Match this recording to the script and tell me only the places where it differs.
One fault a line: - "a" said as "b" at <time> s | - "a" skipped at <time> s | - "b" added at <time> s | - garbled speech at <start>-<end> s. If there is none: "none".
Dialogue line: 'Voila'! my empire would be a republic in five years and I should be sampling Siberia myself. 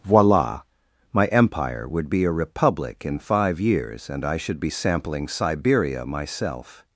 none